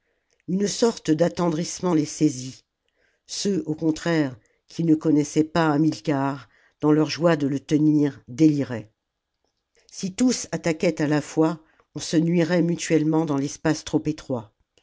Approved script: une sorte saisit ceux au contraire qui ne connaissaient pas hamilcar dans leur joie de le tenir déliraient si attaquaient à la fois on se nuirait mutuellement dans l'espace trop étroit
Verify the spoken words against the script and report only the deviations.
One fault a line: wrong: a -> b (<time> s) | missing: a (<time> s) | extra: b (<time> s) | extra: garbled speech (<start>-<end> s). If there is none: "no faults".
extra: d'attendrissement les (1.1 s)
extra: tous (10.1 s)